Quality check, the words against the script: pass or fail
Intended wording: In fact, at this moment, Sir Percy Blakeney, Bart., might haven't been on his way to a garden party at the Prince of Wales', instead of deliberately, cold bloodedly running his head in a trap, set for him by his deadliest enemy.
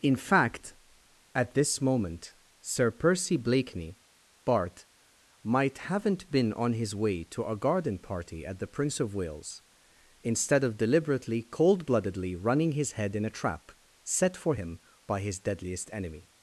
pass